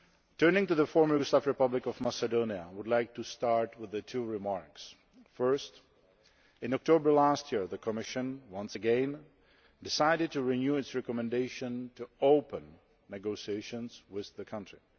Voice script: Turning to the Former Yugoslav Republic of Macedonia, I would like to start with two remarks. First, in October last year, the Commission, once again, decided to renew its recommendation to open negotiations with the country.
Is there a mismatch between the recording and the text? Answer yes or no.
no